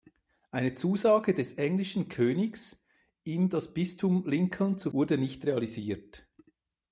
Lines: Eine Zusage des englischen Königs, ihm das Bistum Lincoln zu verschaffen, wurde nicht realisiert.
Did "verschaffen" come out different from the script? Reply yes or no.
yes